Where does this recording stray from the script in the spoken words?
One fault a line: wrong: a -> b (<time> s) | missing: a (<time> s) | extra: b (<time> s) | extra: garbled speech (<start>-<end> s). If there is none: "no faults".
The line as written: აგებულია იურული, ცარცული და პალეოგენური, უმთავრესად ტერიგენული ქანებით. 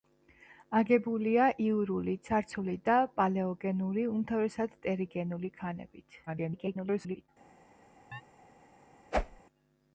extra: garbled speech (6.3-7.3 s)